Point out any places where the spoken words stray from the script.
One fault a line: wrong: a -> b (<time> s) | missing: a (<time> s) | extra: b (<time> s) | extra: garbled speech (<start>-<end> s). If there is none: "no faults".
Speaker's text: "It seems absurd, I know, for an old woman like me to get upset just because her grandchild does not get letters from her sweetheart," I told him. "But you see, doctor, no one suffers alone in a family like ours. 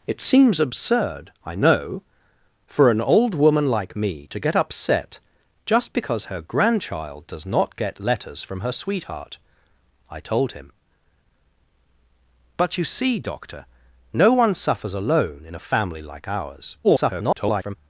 extra: garbled speech (16.8-17.8 s)